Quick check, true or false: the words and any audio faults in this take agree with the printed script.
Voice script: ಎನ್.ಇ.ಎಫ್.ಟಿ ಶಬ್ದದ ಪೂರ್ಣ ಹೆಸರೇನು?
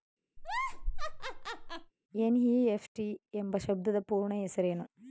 false